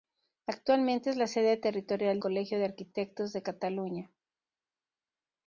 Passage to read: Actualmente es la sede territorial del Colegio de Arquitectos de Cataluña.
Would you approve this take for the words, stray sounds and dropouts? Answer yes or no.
no